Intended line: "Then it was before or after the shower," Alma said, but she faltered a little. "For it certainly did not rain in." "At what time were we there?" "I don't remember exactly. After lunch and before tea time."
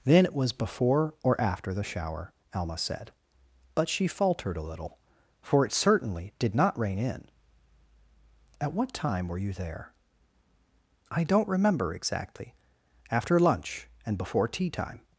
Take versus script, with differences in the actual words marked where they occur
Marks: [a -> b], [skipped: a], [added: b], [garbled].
"Then it was before or after the shower," Alma said, but she faltered a little. "For it certainly did not rain in." "At what time were [we -> you] there?" "I don't remember exactly. After lunch and before tea time."